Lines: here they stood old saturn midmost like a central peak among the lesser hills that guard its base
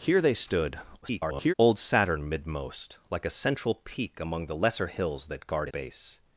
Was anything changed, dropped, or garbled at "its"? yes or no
yes